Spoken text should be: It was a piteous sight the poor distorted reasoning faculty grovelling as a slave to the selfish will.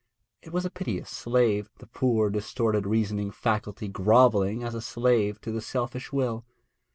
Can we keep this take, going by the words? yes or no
no